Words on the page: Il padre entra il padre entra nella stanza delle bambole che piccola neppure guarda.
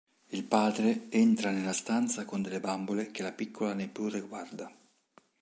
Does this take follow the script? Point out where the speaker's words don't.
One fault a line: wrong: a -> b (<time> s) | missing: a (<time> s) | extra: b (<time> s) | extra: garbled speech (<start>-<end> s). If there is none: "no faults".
missing: il padre entra (1.5 s)
extra: con (2.2 s)
extra: la (3.2 s)